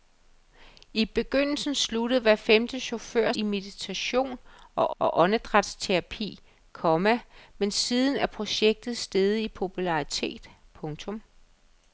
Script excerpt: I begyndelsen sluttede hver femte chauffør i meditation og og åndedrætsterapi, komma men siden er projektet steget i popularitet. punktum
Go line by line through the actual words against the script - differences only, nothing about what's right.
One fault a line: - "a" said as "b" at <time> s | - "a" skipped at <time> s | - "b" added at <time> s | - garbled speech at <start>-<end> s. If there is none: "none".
none